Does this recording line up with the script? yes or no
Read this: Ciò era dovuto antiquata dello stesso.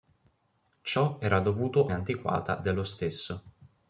yes